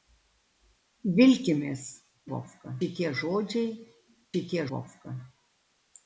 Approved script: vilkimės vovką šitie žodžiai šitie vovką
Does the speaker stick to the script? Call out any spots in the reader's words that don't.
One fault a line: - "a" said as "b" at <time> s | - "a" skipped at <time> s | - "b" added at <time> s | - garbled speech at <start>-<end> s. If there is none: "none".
none